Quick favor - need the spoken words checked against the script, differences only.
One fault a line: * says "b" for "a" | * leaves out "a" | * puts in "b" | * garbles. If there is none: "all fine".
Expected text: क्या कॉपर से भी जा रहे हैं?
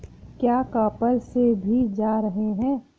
all fine